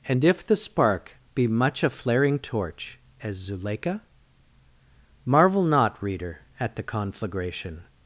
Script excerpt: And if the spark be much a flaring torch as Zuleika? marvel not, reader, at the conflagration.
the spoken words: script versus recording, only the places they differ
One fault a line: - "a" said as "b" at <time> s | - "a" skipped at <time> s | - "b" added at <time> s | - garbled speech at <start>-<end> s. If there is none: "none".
none